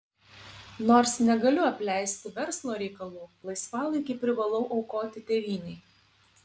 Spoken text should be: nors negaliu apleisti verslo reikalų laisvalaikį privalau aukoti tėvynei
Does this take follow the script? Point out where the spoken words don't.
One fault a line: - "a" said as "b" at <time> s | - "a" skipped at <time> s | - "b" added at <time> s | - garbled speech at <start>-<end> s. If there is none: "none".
none